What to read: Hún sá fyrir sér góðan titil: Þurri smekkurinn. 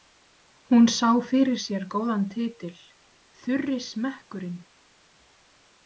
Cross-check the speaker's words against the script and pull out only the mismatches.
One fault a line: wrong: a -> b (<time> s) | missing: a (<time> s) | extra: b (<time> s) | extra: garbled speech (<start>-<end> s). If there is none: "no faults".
no faults